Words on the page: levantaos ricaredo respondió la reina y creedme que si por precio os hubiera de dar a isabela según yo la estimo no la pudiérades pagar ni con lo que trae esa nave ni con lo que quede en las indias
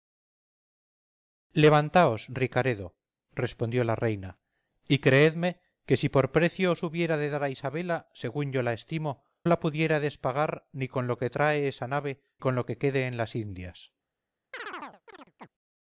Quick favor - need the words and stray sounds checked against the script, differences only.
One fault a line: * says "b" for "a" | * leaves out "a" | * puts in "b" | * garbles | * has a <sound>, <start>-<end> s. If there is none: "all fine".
* leaves out "no"
* leaves out "ni"
* has a chirp, 14.5-15.5 s